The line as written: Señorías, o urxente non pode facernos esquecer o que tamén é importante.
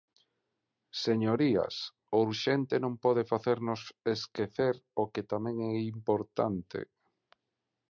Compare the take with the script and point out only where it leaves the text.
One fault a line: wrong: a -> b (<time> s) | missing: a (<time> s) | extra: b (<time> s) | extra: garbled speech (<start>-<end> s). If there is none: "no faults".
no faults